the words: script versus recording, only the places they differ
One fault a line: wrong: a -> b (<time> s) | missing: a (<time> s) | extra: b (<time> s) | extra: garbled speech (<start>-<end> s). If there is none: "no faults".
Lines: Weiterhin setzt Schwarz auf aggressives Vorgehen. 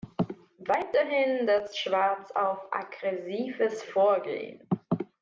no faults